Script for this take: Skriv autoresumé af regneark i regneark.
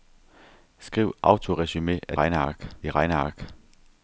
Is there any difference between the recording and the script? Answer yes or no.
no